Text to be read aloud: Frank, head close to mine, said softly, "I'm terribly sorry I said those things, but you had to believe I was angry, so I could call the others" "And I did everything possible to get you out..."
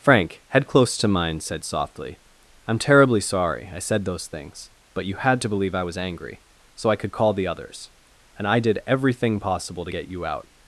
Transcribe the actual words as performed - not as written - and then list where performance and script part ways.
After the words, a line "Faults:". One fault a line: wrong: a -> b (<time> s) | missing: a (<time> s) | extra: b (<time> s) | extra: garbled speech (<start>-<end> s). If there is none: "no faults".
Frank, head close to mine, said softly, "I'm terribly sorry I said those things, but you had to believe I was angry, so I could call the others" "And I did everything possible to get you out..."
Faults:
no faults